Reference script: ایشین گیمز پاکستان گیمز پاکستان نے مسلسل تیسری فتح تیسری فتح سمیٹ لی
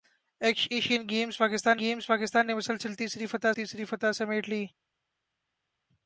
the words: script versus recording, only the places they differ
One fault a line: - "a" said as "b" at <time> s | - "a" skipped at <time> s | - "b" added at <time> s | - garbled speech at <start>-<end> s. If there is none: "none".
none